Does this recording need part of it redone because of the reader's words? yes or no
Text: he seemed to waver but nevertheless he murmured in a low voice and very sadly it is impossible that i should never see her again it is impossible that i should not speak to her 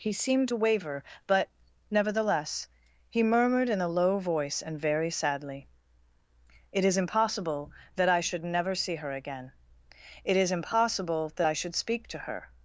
yes